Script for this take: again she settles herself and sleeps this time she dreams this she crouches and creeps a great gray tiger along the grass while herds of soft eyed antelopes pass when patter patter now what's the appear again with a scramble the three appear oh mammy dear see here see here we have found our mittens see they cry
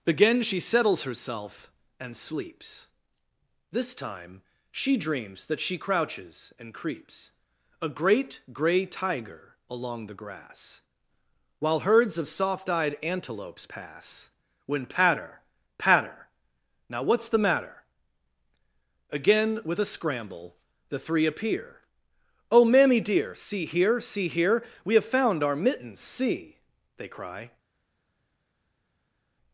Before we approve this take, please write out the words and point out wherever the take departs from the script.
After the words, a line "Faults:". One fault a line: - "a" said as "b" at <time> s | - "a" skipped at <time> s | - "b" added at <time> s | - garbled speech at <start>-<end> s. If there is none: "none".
again she settles herself and sleeps this time she dreams that she crouches and creeps a great gray tiger along the grass while herds of soft eyed antelopes pass when patter patter now what's the matter again with a scramble the three appear oh mammy dear see here see here we have found our mittens see they cry
Faults:
- "this" said as "that" at 5.5 s
- "appear" said as "matter" at 17.4 s